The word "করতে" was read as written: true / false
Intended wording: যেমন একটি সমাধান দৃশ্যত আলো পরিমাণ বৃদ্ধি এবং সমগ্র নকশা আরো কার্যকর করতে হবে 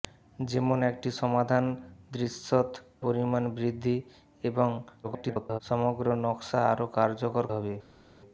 false